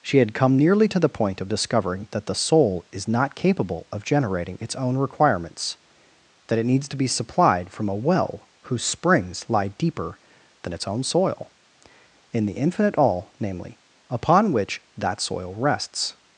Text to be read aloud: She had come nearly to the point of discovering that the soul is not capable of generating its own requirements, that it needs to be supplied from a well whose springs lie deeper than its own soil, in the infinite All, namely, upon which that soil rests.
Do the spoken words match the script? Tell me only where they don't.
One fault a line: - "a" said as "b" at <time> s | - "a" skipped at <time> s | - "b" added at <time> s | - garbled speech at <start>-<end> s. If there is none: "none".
none